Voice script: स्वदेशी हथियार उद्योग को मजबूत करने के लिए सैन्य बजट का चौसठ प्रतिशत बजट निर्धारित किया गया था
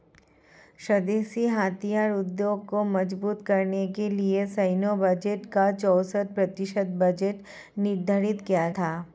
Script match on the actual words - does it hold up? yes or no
no